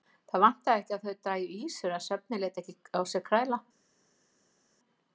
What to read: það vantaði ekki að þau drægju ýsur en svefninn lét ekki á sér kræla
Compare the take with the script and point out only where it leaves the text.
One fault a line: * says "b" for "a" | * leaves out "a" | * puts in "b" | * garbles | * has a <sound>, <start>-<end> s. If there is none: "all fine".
all fine